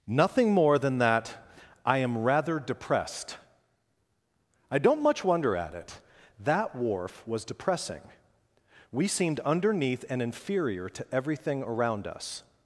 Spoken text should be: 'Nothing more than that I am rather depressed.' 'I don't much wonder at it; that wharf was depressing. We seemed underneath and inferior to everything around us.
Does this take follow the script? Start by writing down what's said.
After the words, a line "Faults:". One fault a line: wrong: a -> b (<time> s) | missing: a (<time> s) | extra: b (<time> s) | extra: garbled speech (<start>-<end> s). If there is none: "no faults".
'Nothing more than that I am rather depressed.' 'I don't much wonder at it; that wharf was depressing. We seemed underneath and inferior to everything around us.
Faults:
no faults